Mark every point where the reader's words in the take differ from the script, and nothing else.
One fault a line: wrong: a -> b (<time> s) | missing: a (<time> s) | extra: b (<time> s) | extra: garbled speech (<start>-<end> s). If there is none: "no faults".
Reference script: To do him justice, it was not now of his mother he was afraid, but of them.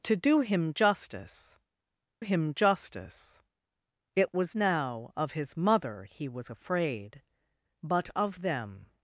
extra: him justice (2.2 s)
missing: not (4.6 s)